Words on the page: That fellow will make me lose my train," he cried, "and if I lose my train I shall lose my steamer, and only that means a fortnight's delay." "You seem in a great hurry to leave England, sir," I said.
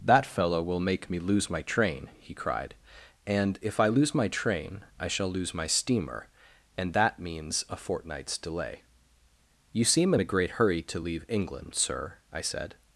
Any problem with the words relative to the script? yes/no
yes